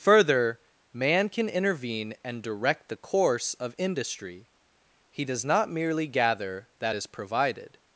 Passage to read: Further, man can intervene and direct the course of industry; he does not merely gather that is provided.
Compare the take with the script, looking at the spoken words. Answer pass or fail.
pass